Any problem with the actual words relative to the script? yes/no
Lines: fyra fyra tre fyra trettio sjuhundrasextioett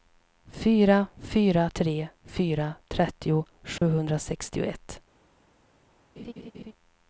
no